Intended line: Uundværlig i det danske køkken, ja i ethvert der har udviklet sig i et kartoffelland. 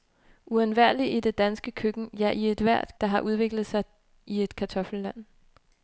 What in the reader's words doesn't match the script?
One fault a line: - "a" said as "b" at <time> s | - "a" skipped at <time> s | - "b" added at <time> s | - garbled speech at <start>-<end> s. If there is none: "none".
none